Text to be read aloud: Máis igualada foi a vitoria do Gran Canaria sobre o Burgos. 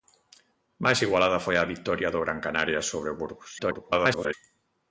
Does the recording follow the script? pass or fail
fail